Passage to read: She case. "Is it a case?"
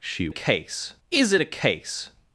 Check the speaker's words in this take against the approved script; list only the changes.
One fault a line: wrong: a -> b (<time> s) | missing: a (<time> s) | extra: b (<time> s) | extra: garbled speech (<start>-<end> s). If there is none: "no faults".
no faults